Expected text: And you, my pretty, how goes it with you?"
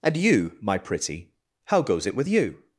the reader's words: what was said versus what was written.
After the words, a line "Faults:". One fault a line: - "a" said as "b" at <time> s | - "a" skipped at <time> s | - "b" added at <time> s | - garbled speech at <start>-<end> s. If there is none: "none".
And you, my pretty, how goes it with you?"
Faults:
none